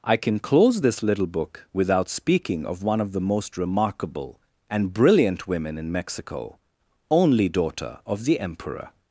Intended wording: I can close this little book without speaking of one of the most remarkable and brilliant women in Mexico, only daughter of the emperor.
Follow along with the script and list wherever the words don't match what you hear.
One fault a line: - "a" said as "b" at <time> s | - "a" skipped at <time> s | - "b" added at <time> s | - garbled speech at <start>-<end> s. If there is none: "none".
none